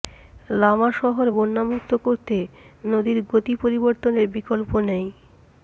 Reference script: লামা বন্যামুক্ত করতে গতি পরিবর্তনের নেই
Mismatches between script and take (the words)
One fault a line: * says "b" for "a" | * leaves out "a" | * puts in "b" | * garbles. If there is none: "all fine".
* puts in "শহর"
* puts in "নদীর"
* puts in "বিকল্প"